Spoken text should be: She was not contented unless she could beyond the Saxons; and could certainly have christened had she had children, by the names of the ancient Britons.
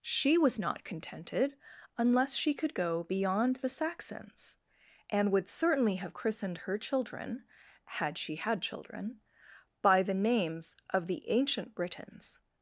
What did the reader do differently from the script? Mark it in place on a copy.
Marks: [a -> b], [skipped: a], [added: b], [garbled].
She was not contented unless she could [added: go] beyond the Saxons; and [could -> would] certainly have christened [added: her children] had she had children, by the names of the ancient Britons.